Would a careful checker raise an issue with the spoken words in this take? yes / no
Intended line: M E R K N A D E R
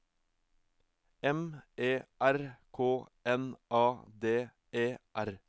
no